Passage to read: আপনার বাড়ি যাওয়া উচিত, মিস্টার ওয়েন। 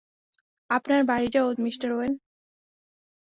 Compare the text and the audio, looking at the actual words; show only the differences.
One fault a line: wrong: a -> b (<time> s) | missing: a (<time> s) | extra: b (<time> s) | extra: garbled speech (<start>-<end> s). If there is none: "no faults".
missing: উচিত (1.5 s)